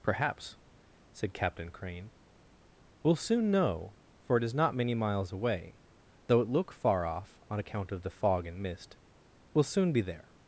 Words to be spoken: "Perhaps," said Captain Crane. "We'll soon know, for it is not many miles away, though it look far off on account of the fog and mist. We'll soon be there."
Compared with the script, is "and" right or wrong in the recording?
right